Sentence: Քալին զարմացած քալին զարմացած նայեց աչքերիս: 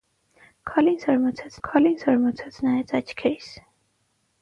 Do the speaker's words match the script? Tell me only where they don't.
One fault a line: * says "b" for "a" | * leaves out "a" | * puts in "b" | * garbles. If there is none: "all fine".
all fine